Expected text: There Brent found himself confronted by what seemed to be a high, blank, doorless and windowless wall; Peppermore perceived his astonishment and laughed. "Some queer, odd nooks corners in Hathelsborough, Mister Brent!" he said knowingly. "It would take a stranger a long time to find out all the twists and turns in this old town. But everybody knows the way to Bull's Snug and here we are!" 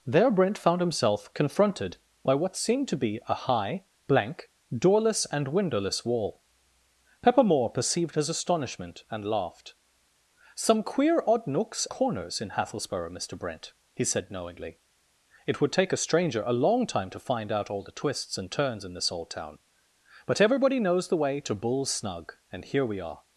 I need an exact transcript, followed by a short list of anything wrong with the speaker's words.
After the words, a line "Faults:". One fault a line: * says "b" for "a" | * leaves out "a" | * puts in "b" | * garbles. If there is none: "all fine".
There Brent found himself confronted by what seemed to be a high, blank, doorless and windowless wall; Peppermore perceived his astonishment and laughed. "Some queer, odd nooks corners in Hathelsborough, Mister Brent!" he said knowingly. "It would take a stranger a long time to find out all the twists and turns in this old town. But everybody knows the way to Bull's Snug and here we are!"
Faults:
all fine